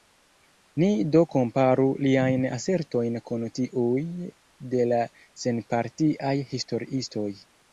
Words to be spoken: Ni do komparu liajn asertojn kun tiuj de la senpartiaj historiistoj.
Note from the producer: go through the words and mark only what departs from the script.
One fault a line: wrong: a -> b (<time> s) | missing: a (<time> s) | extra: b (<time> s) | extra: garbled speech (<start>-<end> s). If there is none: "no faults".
no faults